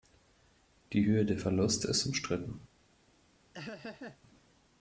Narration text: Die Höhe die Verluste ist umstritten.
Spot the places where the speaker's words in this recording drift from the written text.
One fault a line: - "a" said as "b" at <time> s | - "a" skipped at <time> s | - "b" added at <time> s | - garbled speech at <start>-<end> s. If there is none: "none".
- "die" said as "der" at 1.2 s